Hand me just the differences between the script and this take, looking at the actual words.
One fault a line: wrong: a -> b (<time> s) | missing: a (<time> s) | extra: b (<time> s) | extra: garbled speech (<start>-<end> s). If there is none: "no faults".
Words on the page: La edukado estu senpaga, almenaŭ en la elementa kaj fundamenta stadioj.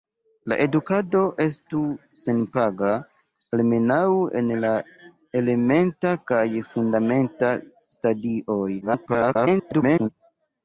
extra: garbled speech (8.8-10.1 s)